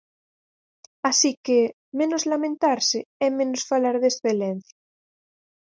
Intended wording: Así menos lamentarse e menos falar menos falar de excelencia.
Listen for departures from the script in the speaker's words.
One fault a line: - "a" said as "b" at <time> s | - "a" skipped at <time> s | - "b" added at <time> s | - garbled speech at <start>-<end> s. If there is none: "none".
- "que" added at 1.4 s
- "menos falar" skipped at 4.0 s